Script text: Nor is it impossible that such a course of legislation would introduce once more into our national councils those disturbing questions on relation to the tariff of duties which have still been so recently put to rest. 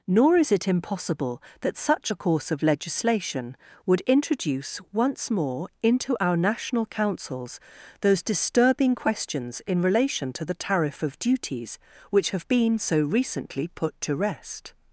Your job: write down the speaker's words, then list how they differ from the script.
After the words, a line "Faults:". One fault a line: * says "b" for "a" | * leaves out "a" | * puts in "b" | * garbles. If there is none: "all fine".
Nor is it impossible that such a course of legislation would introduce once more into our national councils those disturbing questions in relation to the tariff of duties which have been so recently put to rest.
Faults:
* says "in" for "on"
* leaves out "still"